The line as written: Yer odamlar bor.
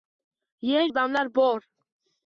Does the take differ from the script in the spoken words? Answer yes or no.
no